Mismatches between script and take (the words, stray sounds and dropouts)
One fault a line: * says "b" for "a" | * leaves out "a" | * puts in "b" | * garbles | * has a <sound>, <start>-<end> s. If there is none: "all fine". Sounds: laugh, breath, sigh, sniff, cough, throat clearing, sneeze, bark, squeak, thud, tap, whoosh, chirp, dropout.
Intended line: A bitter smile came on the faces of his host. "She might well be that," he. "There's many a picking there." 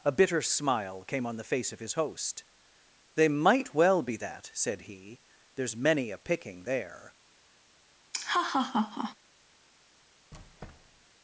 * says "face" for "faces"
* says "They" for "She"
* puts in "said"
* has a laugh, 8.1-9.2 s
* has a squeak, 10.3-11.1 s